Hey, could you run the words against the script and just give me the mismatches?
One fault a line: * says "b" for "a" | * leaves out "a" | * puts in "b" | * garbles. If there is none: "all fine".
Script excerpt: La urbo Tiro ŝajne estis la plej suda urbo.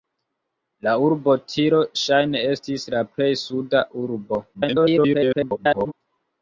* garbles